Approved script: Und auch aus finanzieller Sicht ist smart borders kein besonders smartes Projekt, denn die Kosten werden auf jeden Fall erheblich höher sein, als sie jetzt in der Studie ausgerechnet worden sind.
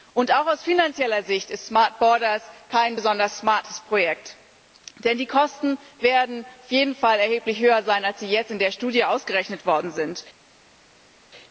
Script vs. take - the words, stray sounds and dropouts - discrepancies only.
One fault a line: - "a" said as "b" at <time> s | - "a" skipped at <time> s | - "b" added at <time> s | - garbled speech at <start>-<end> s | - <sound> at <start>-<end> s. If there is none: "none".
none